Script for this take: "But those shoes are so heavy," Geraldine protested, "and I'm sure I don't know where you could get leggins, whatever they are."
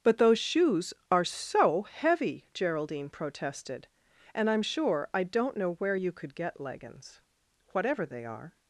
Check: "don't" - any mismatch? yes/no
no